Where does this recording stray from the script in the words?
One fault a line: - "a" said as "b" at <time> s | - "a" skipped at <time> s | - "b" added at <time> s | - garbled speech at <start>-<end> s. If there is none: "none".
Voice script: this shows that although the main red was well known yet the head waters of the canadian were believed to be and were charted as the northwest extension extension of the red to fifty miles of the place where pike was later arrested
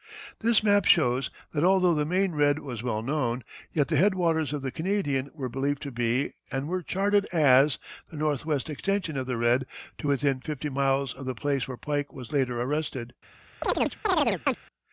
- "map" added at 0.6 s
- "extension" skipped at 9.2 s
- "within" added at 10.1 s